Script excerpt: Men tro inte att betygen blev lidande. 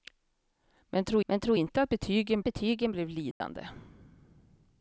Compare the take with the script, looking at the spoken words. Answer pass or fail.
fail